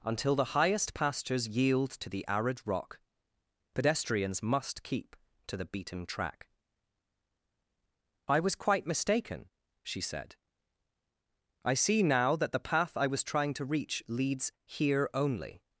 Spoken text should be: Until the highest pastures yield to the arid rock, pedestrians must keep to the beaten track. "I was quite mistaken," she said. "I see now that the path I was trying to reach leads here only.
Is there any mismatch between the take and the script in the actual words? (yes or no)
no